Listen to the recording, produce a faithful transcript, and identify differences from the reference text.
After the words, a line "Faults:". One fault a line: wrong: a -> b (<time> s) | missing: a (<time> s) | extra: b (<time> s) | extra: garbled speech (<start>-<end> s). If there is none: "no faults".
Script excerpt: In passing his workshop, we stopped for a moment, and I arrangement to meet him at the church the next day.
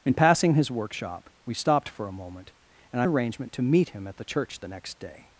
In passing his workshop, we stopped for a moment, and I arrangement to meet him at the church the next day.
Faults:
no faults